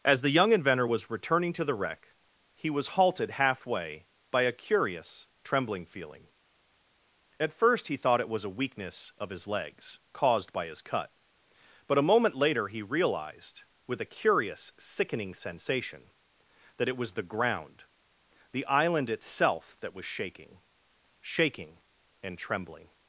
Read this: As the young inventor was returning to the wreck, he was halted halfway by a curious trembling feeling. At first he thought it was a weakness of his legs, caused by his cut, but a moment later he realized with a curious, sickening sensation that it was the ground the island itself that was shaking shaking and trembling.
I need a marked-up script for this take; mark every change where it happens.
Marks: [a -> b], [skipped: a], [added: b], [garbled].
As the young inventor was returning to the wreck, he was halted halfway by a curious trembling feeling. At first he thought it was a weakness of his legs, caused by his cut, but a moment later he realized with a curious, sickening sensation that it was the ground the island itself that was shaking shaking and trembling.